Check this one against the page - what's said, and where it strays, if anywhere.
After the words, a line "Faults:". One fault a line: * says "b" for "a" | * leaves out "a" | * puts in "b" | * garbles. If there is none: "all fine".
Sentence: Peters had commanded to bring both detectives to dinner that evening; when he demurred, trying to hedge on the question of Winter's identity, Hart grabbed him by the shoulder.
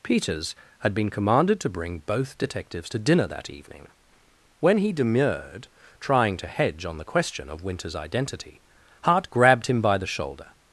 Peters had been commanded to bring both detectives to dinner that evening; when he demurred, trying to hedge on the question of Winter's identity, Hart grabbed him by the shoulder.
Faults:
* puts in "been"